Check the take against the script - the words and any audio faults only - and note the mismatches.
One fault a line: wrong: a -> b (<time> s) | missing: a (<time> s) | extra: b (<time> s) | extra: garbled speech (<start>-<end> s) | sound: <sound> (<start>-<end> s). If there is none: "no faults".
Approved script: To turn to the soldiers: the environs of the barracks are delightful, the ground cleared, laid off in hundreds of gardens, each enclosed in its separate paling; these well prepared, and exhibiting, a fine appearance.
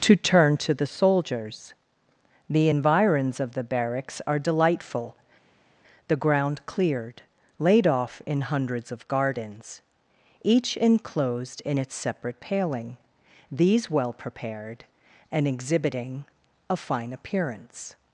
no faults